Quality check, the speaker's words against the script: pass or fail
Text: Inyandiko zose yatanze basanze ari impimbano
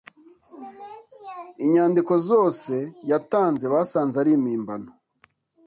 pass